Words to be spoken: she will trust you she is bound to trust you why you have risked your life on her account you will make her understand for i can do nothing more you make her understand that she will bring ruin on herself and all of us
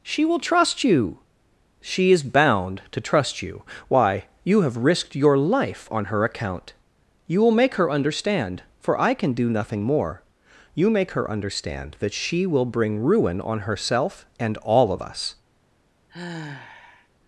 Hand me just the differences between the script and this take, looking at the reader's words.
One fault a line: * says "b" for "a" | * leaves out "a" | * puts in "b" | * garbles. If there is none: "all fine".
all fine